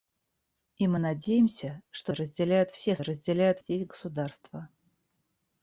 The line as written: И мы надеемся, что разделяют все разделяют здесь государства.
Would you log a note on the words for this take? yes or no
no